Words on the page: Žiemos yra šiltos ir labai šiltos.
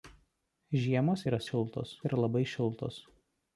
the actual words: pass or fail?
pass